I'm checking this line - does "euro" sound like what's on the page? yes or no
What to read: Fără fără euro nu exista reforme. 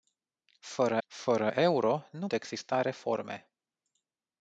yes